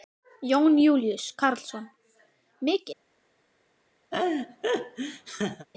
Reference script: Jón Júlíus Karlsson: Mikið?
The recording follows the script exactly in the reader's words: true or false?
true